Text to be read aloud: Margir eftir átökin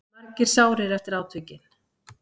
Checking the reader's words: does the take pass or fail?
fail